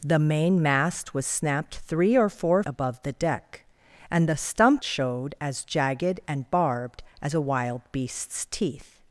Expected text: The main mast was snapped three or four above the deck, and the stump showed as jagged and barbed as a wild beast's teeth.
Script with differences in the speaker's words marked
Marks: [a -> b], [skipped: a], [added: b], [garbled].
The main mast was snapped three or four above the deck, and the stump showed as jagged and barbed as a wild beast's teeth.